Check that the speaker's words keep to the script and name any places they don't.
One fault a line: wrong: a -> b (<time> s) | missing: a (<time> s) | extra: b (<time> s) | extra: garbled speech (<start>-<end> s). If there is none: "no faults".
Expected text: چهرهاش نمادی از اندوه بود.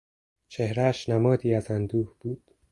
no faults